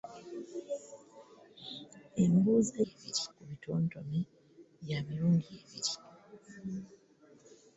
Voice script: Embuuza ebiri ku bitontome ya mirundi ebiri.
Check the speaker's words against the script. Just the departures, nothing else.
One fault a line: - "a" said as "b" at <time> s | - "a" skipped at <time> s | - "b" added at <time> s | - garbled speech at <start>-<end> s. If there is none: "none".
none